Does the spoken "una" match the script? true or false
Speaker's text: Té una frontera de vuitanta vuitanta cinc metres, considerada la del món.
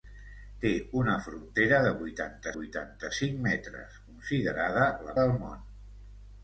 true